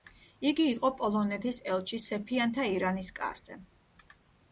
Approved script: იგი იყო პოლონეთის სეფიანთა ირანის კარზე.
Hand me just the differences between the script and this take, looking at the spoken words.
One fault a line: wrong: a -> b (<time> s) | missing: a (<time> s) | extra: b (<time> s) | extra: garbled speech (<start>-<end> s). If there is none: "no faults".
extra: ელჩი (1.7 s)